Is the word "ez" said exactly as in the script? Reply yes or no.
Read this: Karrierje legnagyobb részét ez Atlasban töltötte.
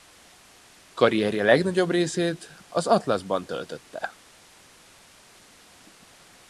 no